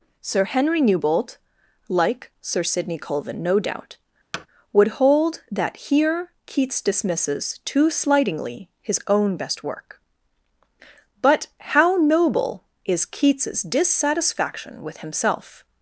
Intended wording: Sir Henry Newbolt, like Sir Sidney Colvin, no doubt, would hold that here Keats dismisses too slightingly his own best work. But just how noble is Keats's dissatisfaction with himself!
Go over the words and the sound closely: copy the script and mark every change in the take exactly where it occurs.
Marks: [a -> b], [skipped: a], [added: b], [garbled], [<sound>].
Sir Henry Newbolt, like Sir Sidney Colvin, no doubt, [thud] would hold that here Keats dismisses too slightingly his own best work. But [skipped: just] how noble is Keats's dissatisfaction with himself!